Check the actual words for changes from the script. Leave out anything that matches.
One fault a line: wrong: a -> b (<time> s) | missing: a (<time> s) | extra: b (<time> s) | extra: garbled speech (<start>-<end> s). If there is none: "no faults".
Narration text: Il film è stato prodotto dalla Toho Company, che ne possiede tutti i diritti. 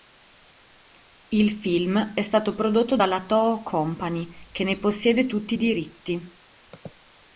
no faults